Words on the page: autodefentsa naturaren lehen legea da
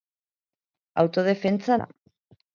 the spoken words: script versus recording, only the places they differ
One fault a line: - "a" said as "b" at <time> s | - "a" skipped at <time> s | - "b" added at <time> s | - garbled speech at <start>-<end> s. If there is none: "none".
- "naturaren lehen legea" skipped at 1.8 s